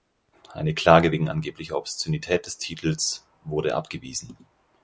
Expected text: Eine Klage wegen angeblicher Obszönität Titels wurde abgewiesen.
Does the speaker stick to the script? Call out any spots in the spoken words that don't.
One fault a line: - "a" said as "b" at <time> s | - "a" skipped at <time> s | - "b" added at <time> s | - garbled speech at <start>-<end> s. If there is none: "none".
- "des" added at 2.4 s